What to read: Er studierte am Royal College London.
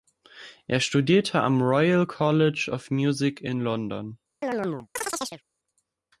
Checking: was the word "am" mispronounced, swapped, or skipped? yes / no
no